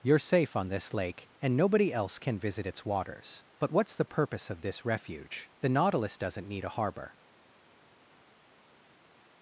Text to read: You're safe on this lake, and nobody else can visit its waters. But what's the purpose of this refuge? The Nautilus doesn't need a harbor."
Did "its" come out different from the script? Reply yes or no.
no